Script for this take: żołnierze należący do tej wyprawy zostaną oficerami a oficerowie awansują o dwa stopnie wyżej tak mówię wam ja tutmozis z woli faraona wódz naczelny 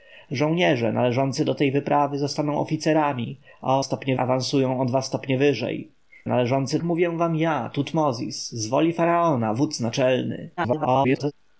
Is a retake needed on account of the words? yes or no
yes